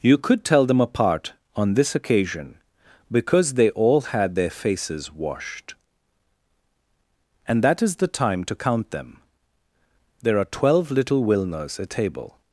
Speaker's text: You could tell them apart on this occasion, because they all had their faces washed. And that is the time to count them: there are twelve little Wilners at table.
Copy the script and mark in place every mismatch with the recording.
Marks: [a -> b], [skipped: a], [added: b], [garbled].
You could tell them apart on this occasion, because they all had their faces washed. And that is the time to count them: there are twelve little Wilners at table.